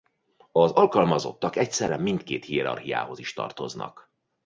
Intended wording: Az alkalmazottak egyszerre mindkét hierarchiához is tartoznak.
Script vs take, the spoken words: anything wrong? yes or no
no